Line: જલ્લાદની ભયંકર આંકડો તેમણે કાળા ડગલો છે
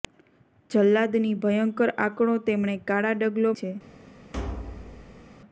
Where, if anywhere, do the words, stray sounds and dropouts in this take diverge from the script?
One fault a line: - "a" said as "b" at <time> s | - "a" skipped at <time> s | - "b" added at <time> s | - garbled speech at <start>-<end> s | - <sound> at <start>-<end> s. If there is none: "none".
- thud at 4.3-5.3 s